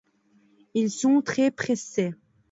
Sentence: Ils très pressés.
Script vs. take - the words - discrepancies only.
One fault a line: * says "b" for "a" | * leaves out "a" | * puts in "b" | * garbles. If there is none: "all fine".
* puts in "sont"